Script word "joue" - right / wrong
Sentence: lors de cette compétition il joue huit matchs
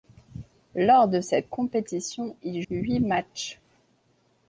wrong